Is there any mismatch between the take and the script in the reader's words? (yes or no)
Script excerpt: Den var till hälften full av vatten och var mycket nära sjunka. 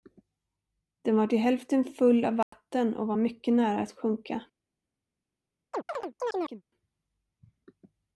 yes